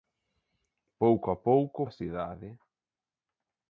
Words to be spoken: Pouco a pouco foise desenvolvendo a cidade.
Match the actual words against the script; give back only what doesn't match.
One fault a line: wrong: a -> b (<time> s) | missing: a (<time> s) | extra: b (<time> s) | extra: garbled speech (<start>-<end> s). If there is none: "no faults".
missing: foise desenvolvendo (1.8 s)